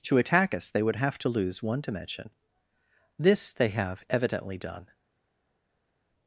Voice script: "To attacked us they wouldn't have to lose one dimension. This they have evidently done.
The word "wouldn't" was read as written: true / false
false